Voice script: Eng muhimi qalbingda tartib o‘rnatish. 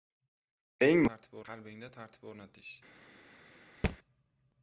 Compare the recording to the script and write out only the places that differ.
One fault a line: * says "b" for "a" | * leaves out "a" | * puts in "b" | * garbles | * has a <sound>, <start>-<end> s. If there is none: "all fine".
* says "tartib" for "muhimi"
* has a thud, 3.8-4.0 s